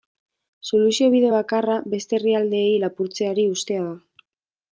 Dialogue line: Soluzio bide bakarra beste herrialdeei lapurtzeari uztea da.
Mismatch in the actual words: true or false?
false